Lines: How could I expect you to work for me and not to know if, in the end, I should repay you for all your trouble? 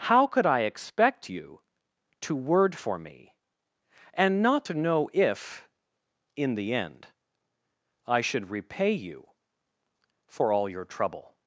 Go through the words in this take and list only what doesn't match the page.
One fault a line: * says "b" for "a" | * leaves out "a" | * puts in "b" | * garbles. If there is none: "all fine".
* says "word" for "work"